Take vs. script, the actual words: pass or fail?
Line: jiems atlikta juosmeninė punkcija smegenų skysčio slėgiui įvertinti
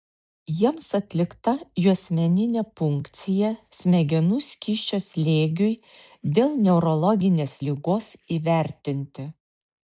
fail